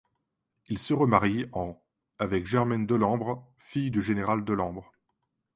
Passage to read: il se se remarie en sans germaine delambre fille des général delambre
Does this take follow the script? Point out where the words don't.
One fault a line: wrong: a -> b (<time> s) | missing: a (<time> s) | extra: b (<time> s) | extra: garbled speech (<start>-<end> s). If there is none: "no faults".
missing: se (0.9 s)
wrong: sans -> avec (2.2 s)
wrong: des -> du (3.9 s)